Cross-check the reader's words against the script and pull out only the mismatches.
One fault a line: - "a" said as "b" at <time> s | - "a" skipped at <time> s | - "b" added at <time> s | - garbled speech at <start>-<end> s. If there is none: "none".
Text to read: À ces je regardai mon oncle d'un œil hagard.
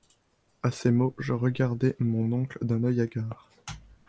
- "mots" added at 0.9 s